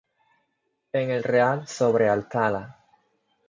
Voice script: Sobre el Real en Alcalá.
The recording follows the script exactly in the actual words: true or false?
false